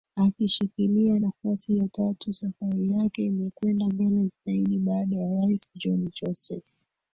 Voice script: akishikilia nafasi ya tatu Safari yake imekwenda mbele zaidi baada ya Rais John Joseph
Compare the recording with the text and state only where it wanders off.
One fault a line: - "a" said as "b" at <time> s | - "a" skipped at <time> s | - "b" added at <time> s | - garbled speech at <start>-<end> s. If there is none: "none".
none